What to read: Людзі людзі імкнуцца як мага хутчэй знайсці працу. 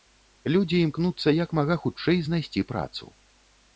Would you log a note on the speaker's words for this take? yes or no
yes